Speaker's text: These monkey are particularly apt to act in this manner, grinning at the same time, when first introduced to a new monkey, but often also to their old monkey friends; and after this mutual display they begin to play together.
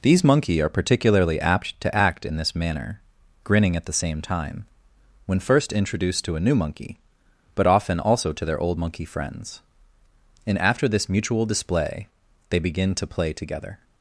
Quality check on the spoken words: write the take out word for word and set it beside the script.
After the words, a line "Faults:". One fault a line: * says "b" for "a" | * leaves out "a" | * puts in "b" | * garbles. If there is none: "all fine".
These monkey are particularly apt to act in this manner, grinning at the same time, when first introduced to a new monkey, but often also to their old monkey friends; and after this mutual display they begin to play together.
Faults:
all fine